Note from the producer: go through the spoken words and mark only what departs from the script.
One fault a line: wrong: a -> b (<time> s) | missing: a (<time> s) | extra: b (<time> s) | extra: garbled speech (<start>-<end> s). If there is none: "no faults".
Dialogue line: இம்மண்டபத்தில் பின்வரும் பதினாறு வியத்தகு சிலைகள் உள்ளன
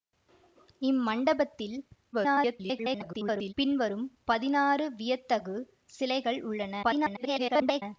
extra: garbled speech (2.1-3.5 s)
extra: garbled speech (6.8-7.8 s)